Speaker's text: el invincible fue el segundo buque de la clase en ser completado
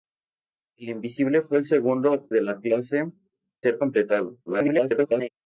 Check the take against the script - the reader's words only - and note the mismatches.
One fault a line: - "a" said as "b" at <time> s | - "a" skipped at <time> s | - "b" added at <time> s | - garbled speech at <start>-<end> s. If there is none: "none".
- "buque" skipped at 2.3 s
- "en" skipped at 3.1 s
- garbled speech at 4.5-5.3 s